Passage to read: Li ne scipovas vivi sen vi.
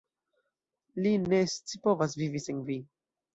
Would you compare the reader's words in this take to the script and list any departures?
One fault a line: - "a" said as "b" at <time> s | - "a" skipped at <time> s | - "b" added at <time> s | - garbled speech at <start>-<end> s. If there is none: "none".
none